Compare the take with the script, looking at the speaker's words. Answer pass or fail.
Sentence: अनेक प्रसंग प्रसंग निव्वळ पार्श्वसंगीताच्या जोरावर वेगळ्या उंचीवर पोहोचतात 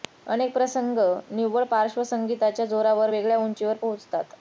fail